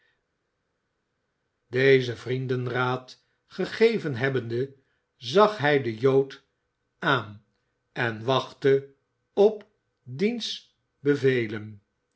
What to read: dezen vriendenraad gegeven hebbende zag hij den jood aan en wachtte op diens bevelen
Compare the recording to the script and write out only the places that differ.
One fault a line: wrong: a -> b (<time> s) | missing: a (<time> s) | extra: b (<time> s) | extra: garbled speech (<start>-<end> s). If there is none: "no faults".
no faults